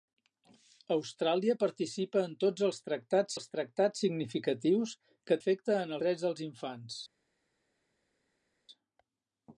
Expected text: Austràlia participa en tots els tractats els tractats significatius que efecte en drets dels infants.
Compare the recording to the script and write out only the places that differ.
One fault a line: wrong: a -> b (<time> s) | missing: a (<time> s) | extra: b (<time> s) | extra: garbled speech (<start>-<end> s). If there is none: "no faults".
no faults